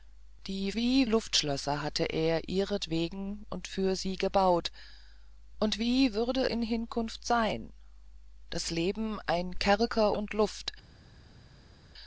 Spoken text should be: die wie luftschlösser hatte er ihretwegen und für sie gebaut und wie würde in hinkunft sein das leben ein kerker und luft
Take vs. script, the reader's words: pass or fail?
pass